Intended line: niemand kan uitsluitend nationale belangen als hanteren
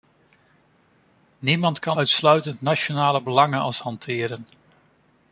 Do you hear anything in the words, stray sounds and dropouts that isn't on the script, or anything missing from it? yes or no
no